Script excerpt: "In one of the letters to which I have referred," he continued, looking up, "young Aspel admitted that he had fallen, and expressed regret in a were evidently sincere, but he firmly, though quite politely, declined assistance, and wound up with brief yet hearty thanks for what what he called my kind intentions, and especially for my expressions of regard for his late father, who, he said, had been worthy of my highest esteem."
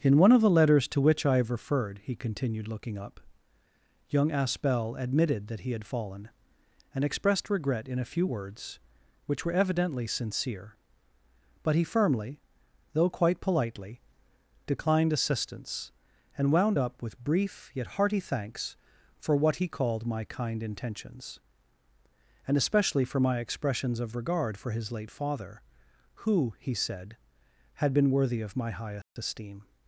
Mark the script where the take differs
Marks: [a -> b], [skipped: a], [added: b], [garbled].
"In one of the letters to which I have referred," he continued, looking up, "young Aspel admitted that he had fallen, and expressed regret in a [added: few words which] were evidently sincere, but he firmly, though quite politely, declined assistance, and wound up with brief yet hearty thanks for what [skipped: what] he called my kind intentions, and especially for my expressions of regard for his late father, who, he said, had been worthy of my highest esteem."